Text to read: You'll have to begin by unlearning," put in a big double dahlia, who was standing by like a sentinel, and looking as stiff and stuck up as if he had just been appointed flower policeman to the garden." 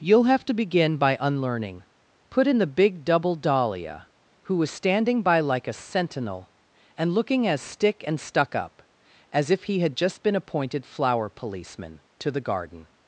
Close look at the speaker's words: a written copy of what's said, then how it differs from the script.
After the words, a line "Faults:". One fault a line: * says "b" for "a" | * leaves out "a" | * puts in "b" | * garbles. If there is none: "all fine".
You'll have to begin by unlearning," put in the big double dahlia, who was standing by like a sentinel, and looking as stick and stuck up as if he had just been appointed flower policeman to the garden."
Faults:
* says "the" for "a"
* says "stick" for "stiff"